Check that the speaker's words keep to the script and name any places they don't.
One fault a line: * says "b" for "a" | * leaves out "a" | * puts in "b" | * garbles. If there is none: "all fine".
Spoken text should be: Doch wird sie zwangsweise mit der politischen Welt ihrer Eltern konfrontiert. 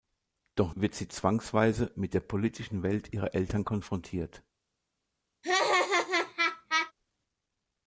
all fine